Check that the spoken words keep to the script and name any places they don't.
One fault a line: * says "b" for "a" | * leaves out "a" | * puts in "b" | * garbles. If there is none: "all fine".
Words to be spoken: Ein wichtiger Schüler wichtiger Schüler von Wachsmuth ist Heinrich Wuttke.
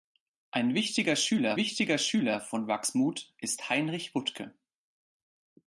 all fine